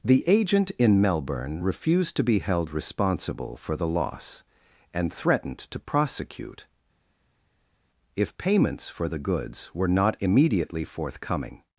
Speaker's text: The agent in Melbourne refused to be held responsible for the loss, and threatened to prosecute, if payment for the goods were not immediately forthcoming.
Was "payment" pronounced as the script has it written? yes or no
no